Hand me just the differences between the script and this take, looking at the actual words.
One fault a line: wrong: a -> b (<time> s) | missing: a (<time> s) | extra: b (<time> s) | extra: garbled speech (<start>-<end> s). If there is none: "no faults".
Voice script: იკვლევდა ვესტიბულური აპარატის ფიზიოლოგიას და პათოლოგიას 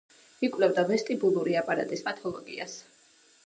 missing: ფიზიოლოგიას და (2.0 s)